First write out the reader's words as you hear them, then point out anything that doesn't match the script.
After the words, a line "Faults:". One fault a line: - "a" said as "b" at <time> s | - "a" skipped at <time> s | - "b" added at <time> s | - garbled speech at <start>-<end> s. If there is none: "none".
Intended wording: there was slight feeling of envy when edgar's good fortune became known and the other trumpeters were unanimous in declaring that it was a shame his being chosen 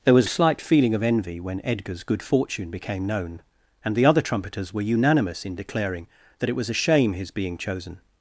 there was slight feeling of envy when edgar's good fortune became known and the other trumpeters were unanimous in declaring that it was a shame his being chosen
Faults:
none